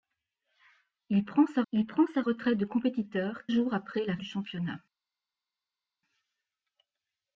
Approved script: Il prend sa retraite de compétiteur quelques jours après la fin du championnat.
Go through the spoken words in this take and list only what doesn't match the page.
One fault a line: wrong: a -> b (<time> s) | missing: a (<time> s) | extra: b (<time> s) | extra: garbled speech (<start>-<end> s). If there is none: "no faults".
extra: il prend sa (1.7 s)
missing: quelques (3.5 s)
missing: fin (4.2 s)